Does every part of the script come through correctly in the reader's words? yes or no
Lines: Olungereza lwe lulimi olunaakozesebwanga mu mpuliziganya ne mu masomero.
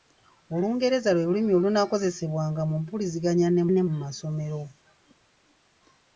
no